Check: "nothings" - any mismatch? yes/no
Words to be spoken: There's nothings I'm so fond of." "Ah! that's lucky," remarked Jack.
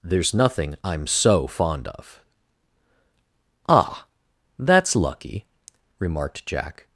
yes